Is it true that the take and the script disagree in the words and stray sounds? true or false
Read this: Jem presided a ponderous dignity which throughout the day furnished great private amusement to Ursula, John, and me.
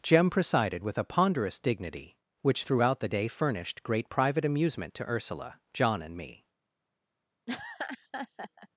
true